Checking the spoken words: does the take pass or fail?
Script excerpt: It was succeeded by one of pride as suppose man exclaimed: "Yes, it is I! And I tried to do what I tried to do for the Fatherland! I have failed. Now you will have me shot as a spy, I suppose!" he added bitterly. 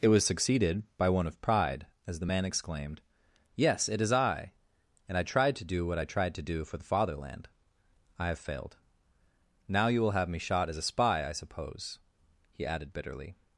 fail